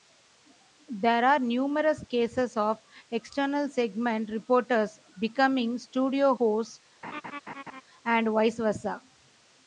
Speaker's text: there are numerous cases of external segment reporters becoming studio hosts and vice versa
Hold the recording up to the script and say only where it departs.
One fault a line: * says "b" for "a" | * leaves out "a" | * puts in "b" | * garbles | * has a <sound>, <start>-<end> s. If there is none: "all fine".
* has a laugh, 7.0-7.8 s